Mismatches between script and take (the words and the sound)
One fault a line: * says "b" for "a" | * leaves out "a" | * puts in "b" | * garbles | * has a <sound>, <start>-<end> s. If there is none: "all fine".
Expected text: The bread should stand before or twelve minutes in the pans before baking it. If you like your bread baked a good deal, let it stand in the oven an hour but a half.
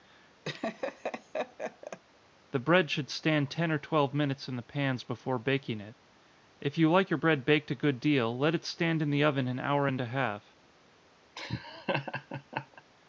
* has a laugh, 0.4-2.0 s
* says "ten" for "before"
* says "and" for "but"
* has a laugh, 11.4-12.8 s